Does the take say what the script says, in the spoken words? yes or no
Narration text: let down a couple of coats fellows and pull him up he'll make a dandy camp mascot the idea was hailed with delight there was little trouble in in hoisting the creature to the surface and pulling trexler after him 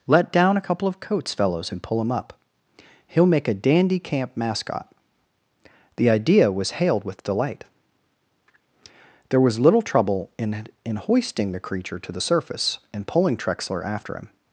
yes